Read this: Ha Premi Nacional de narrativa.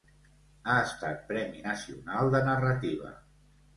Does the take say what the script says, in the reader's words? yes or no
no